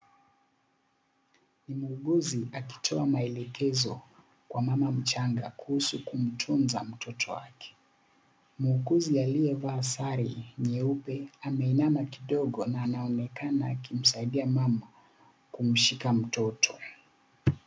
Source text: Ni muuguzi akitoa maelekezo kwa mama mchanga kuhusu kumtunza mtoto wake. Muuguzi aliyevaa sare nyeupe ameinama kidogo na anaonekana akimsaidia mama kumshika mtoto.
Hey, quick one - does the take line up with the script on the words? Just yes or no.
yes